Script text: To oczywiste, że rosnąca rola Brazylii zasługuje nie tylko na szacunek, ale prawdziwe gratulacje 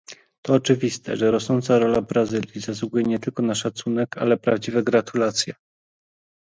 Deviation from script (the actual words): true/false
false